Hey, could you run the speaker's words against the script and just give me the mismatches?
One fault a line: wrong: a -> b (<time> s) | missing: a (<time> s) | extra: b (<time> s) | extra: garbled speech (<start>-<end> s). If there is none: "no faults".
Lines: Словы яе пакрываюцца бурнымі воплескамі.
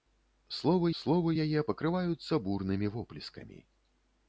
extra: словы (1.0 s)